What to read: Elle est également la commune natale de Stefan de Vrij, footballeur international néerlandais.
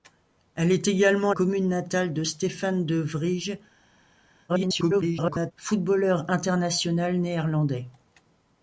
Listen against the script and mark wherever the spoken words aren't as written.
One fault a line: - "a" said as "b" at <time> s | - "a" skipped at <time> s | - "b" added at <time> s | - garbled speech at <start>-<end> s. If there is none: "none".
- "la" skipped at 1.3 s
- garbled speech at 4.5-5.5 s